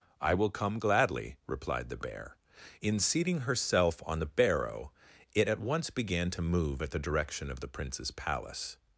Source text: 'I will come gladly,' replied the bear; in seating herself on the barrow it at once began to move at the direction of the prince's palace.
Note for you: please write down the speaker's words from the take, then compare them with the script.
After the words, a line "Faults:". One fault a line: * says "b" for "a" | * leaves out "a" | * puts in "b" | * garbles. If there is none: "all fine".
'I will come gladly,' replied the bear; in seating herself on the barrow it at once began to move at the direction of the prince's palace.
Faults:
all fine